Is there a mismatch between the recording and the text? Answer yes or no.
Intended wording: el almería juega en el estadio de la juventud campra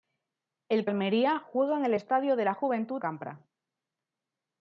no